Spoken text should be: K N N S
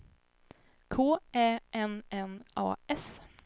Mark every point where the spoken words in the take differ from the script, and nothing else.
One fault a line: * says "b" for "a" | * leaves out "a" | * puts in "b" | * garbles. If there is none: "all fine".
* puts in "Ä"
* puts in "A"